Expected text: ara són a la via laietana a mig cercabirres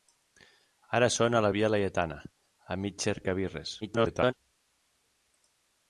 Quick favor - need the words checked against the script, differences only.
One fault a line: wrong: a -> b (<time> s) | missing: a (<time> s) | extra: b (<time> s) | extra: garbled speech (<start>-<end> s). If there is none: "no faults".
extra: garbled speech (3.8-4.3 s)